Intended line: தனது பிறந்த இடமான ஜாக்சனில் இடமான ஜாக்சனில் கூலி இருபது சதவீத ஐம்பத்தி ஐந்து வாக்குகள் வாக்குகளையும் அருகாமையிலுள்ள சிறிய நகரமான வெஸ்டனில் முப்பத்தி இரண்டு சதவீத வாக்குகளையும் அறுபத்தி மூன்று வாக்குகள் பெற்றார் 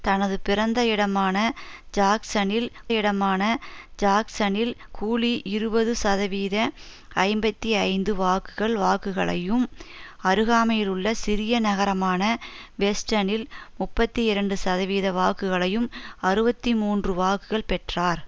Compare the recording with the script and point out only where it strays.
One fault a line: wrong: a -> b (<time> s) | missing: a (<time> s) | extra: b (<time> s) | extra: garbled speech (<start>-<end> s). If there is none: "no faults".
no faults